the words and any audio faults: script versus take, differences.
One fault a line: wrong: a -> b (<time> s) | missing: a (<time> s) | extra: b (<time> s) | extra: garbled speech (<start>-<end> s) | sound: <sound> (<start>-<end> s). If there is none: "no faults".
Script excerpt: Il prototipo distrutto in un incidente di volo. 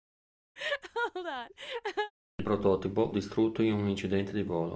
sound: laugh (0.6-2.1 s)